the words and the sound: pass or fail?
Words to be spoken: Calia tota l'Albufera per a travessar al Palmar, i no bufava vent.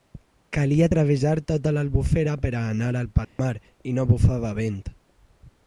fail